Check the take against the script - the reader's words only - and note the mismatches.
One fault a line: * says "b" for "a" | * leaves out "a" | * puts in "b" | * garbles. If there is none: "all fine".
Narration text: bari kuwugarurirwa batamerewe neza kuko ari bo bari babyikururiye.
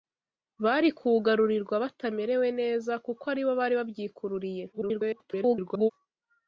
* garbles